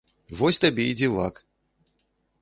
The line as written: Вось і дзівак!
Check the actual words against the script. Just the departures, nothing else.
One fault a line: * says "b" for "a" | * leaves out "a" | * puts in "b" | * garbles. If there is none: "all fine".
* puts in "табе"